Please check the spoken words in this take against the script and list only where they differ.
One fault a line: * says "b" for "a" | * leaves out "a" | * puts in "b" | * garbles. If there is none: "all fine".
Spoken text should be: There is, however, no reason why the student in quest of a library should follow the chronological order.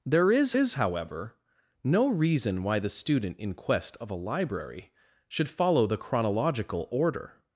* puts in "is"